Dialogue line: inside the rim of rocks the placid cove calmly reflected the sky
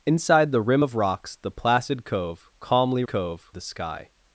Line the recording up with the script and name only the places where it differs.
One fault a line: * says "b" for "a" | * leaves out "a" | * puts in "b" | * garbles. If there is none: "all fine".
* says "cove" for "reflected"